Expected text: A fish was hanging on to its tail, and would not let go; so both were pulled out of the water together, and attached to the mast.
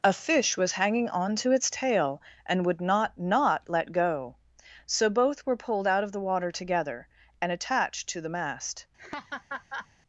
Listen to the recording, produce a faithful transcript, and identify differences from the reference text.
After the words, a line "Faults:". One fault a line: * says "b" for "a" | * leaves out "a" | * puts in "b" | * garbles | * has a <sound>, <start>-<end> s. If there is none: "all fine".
A fish was hanging on to its tail, and would not not let go; so both were pulled out of the water together, and attached to the mast.
Faults:
* puts in "not"
* has a laugh, 9.0-9.9 s